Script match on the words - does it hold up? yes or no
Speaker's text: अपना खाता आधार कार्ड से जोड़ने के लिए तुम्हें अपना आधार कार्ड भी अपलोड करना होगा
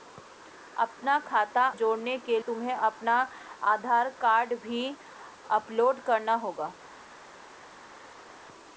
no